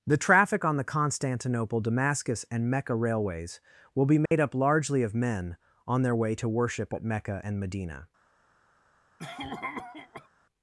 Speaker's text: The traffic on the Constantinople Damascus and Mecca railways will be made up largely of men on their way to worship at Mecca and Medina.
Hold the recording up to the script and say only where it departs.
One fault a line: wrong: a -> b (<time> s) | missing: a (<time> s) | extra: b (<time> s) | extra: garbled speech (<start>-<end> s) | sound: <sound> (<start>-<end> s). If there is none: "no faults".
sound: dropout (4.3-4.3 s)
sound: cough (9.2-10.3 s)